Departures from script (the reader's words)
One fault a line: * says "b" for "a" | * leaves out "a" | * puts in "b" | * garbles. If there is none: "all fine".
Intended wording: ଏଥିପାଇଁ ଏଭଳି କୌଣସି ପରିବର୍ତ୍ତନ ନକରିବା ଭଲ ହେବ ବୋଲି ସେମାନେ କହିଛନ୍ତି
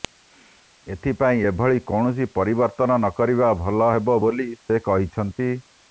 * says "ସେ" for "ସେମାନେ"